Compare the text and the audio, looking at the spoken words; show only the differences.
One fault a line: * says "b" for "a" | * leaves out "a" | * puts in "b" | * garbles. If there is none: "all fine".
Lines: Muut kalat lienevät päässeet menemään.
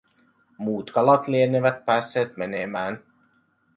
all fine